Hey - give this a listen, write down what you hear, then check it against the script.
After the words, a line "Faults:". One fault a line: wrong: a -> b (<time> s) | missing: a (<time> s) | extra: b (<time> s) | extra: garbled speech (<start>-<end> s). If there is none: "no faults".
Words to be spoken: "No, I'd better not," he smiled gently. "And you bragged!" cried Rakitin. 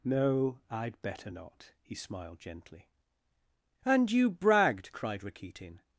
"No, I'd better not," he smiled gently. "And you bragged!" cried Rakitin.
Faults:
no faults